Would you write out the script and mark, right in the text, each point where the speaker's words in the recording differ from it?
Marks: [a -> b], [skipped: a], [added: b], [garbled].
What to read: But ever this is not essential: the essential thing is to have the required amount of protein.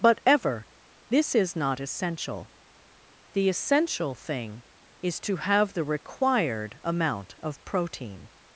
But ever this is not essential: the essential thing is to have the required amount of protein.